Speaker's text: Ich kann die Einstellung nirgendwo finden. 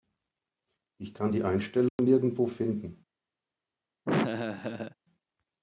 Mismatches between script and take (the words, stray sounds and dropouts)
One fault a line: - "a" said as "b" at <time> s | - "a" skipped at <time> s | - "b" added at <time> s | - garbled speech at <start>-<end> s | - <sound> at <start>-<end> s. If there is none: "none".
- dropout at 1.9-2.0 s
- laugh at 4.1-5.0 s